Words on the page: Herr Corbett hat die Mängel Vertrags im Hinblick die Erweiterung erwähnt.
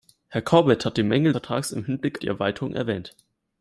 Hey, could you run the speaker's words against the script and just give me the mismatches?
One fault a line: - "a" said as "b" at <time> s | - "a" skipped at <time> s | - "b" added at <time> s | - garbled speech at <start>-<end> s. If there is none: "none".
none